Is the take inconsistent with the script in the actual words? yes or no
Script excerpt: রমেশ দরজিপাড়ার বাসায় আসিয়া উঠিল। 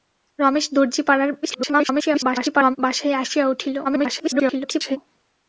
yes